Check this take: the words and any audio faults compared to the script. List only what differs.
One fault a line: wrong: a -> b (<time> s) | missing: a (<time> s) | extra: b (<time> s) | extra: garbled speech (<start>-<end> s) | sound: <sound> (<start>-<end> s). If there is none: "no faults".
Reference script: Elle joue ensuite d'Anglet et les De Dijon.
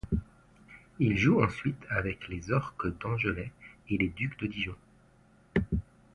wrong: Elle -> Il (1.0 s)
extra: avec les Orques (1.9 s)
extra: Ducs (4.1 s)